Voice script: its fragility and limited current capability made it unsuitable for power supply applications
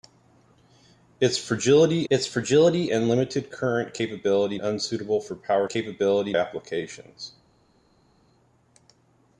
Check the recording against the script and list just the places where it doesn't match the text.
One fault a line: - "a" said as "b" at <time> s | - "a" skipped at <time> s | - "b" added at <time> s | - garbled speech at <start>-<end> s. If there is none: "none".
- "its fragility" added at 2.1 s
- "made it" skipped at 4.6 s
- "supply" said as "capability" at 5.7 s